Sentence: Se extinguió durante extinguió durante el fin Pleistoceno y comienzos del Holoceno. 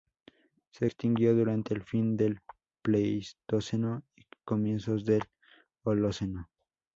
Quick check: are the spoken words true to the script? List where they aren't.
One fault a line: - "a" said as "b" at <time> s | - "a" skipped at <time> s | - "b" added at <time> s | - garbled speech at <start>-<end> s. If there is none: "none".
- "extinguió durante" skipped at 1.7 s
- "del" added at 2.2 s